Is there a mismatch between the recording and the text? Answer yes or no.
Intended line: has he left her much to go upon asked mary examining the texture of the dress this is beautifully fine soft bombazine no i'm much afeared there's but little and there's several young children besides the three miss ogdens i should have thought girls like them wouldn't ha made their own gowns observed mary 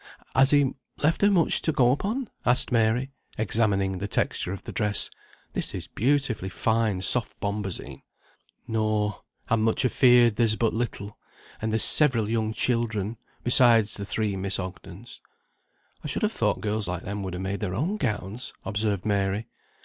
yes